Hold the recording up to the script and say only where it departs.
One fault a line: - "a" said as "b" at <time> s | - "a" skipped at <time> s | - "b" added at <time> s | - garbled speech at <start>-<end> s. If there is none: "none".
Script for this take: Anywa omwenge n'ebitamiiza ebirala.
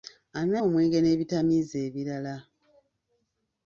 none